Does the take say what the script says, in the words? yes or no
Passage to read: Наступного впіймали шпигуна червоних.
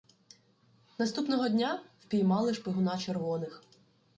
no